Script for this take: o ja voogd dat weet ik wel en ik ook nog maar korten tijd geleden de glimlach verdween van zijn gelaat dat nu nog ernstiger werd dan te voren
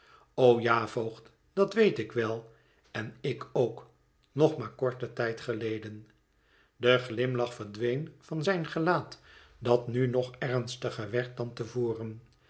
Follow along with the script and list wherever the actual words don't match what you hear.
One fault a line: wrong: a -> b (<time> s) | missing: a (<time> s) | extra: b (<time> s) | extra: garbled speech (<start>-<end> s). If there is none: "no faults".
no faults